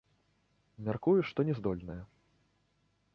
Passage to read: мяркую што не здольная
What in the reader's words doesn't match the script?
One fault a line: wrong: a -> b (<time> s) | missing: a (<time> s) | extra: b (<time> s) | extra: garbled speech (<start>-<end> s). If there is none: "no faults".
no faults